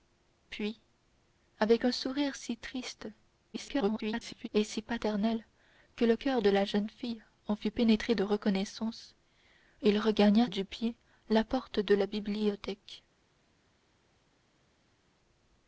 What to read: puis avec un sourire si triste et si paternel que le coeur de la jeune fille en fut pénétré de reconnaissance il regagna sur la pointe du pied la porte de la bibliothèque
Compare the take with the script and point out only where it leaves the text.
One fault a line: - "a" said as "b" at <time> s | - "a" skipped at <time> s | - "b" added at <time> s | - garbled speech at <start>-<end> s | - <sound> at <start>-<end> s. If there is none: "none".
- garbled speech at 3.5-4.5 s
- "sur la pointe" skipped at 10.5 s